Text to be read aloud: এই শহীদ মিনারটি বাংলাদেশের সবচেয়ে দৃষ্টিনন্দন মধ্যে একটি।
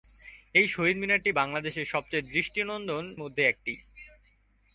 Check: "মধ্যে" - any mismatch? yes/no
no